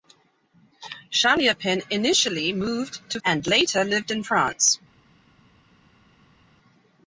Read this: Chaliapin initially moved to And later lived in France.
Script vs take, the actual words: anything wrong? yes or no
no